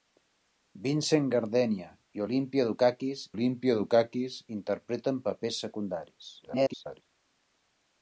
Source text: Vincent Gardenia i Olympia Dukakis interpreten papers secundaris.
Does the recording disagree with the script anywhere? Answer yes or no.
yes